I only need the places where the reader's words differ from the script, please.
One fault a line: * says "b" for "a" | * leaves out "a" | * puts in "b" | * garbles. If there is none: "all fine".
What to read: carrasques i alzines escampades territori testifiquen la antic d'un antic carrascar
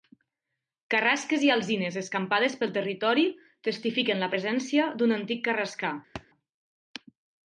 * puts in "pel"
* says "presència" for "antic"